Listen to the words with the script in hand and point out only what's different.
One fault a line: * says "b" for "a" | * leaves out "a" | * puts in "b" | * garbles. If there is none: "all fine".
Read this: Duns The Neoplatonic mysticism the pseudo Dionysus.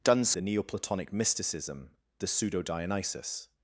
all fine